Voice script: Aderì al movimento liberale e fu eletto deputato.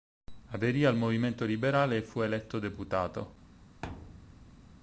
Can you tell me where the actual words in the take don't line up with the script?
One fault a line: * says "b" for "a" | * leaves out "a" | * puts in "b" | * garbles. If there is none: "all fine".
all fine